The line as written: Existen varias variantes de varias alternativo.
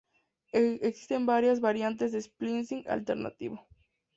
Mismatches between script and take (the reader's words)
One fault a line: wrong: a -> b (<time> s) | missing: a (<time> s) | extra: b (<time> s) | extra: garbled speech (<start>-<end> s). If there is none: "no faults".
wrong: varias -> splicing (2.2 s)